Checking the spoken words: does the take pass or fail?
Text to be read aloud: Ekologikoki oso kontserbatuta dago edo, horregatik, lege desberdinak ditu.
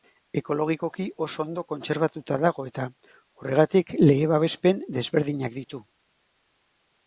fail